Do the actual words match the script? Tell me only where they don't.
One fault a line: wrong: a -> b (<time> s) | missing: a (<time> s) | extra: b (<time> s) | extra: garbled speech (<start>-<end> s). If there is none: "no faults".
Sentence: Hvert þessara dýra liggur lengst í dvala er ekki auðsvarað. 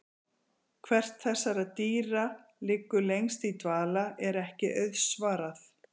no faults